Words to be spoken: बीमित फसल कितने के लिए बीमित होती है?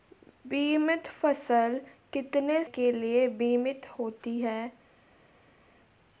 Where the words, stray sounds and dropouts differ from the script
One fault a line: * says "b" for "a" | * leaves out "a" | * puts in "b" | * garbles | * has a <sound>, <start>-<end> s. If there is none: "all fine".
all fine